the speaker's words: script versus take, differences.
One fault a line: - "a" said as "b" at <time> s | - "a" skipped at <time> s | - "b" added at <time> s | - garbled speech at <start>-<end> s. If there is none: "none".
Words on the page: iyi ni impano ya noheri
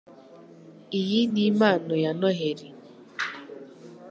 none